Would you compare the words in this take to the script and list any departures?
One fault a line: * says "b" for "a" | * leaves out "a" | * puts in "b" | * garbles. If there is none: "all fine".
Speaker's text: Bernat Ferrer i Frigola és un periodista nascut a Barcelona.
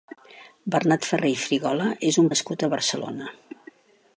* leaves out "periodista"